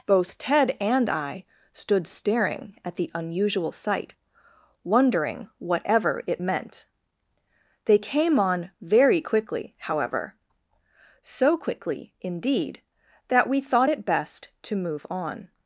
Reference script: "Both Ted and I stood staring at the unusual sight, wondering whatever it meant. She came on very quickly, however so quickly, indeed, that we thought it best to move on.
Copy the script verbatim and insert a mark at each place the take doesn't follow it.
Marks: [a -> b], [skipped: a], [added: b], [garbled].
"Both Ted and I stood staring at the unusual sight, wondering whatever it meant. [She -> They] came on very quickly, however so quickly, indeed, that we thought it best to move on.